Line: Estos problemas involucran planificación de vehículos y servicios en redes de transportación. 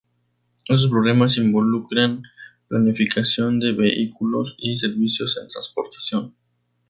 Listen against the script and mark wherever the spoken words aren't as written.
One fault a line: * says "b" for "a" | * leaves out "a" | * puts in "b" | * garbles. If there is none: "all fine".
* leaves out "redes de"